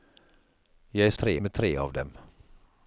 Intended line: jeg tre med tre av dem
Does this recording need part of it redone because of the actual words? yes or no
no